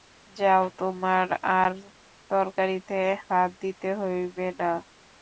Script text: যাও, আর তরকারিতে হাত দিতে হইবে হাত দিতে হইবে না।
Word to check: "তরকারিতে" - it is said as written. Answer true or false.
true